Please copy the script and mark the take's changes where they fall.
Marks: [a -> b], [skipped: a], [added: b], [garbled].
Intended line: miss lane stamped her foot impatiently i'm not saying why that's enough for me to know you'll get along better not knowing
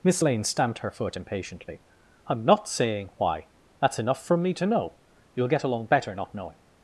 miss lane stamped her foot impatiently i'm not saying why that's enough [for -> from] me to know you'll get along better not knowing